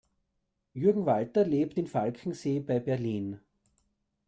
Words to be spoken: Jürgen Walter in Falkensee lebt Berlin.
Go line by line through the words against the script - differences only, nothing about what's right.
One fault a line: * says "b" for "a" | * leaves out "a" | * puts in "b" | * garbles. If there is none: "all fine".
* puts in "lebt"
* says "bei" for "lebt"